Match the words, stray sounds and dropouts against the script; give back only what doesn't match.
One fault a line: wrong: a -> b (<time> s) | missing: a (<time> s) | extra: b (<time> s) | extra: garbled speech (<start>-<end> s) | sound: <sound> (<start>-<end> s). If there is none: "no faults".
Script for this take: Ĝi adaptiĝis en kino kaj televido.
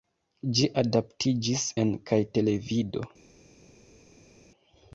missing: kino (1.9 s)